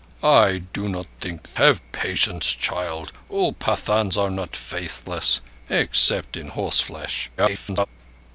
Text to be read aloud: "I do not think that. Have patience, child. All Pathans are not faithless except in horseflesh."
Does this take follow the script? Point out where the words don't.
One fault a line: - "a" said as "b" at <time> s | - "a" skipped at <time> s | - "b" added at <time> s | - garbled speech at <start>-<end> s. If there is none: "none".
- "that" skipped at 1.4 s
- garbled speech at 7.4-7.9 s